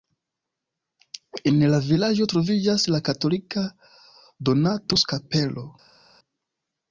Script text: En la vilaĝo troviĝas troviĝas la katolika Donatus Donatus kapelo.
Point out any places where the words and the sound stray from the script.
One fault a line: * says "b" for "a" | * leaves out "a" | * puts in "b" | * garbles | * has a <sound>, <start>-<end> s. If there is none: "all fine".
* leaves out "troviĝas"
* leaves out "Donatus"